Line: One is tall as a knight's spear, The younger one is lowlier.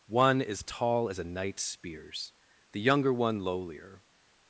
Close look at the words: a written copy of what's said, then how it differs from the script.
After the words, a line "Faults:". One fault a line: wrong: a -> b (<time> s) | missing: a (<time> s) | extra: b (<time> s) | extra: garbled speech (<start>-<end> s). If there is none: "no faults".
One is tall as a knight's spears, The younger one lowlier.
Faults:
wrong: spear -> spears (1.6 s)
missing: is (3.4 s)